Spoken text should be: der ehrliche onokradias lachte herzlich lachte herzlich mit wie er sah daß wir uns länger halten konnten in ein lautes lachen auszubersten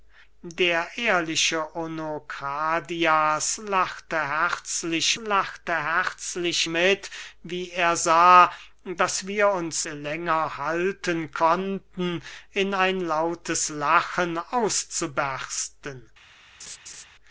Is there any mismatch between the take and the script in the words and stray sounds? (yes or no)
yes